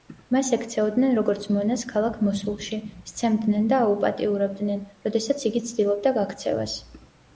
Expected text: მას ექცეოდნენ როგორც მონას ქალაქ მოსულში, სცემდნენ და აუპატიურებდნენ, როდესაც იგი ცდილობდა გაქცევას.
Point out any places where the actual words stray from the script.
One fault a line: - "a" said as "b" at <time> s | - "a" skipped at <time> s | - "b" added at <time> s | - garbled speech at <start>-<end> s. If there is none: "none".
none